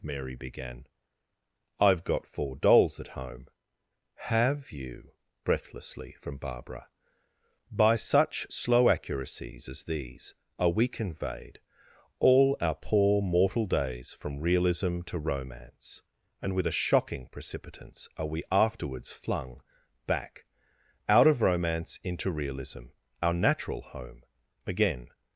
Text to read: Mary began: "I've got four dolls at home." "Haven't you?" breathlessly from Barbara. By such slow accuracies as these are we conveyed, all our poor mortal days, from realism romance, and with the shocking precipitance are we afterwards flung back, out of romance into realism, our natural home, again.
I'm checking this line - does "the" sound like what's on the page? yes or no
no